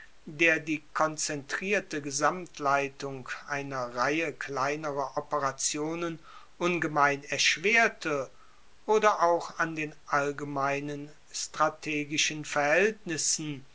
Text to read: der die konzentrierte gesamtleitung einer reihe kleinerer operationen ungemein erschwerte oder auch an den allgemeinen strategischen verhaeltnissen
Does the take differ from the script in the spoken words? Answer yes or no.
no